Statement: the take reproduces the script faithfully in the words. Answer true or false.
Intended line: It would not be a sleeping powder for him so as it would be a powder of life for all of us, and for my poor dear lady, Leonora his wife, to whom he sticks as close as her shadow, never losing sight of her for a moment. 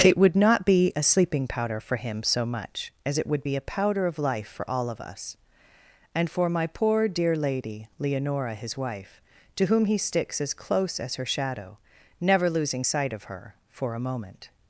false